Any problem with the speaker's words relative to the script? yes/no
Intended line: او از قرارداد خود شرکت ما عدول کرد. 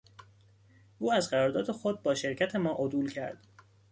yes